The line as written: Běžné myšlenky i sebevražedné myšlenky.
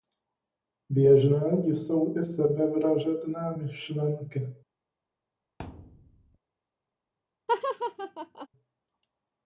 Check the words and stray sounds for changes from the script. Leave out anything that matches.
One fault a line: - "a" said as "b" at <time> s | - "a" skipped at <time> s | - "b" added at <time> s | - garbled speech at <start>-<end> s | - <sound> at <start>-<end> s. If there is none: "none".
- "myšlenky" said as "jsou" at 1.6 s
- thud at 5.6-6.4 s
- laugh at 7.5-8.5 s